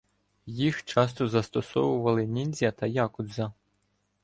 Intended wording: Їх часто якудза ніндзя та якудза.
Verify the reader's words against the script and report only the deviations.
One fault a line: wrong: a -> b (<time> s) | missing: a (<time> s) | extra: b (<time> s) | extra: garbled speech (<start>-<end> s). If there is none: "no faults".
wrong: якудза -> застосовували (1.3 s)